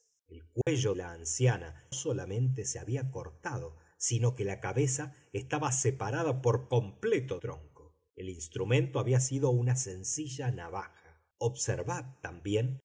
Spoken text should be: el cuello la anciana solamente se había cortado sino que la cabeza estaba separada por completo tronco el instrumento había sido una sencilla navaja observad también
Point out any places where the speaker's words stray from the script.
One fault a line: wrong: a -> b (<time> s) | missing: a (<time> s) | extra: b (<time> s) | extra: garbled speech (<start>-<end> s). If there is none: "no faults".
no faults